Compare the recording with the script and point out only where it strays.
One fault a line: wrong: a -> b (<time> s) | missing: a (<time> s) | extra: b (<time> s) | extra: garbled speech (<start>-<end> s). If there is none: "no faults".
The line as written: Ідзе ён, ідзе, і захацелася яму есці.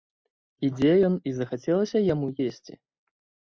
missing: ідзе (1.2 s)